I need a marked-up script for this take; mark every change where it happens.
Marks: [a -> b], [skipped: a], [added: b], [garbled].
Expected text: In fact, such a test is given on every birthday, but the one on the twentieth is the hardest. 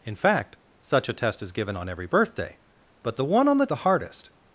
In fact, such a test is given on every birthday, but the one on the [skipped: twentieth is] the hardest.